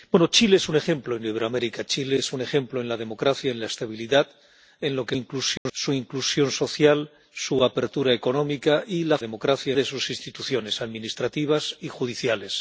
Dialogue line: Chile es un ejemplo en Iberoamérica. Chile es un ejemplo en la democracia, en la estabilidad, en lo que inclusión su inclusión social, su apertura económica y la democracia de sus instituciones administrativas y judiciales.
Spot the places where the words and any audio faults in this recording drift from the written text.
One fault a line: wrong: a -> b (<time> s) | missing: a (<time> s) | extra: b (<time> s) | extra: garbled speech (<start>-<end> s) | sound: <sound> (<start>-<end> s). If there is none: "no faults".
sound: dropout (5.6-5.7 s)